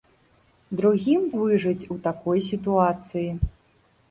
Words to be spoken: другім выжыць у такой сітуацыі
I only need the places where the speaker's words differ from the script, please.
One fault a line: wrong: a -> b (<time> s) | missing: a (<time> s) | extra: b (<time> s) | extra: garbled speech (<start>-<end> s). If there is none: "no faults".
no faults